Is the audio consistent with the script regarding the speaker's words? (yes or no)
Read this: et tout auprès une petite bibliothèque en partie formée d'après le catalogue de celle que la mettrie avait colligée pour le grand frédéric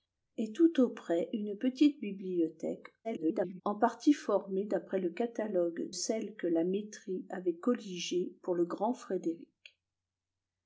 no